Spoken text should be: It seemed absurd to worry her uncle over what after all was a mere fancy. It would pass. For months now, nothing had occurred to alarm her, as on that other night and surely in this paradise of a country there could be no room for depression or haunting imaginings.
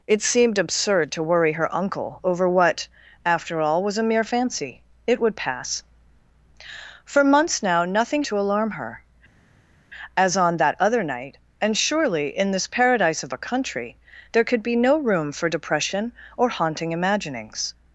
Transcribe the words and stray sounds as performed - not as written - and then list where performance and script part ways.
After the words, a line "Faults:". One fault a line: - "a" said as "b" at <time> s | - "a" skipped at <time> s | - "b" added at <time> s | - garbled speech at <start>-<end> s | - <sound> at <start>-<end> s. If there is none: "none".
It seemed absurd to worry her uncle over what after all was a mere fancy. It would pass. For months now, nothing to alarm her, as on that other night and surely in this paradise of a country there could be no room for depression or haunting imaginings.
Faults:
- "had occurred" skipped at 8.2 s